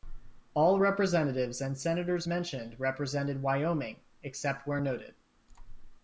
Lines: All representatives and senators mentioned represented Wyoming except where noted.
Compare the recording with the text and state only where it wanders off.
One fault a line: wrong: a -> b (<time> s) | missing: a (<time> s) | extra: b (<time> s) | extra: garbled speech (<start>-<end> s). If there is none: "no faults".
no faults